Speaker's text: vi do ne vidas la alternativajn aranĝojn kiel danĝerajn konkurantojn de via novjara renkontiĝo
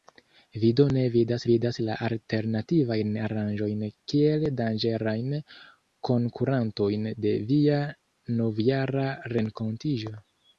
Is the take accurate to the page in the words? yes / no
no